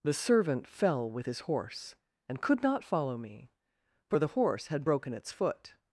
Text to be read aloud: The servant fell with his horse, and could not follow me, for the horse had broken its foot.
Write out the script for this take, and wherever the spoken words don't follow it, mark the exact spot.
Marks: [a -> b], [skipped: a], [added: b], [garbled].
The servant fell with his horse, and could not follow me, for the horse had broken its foot.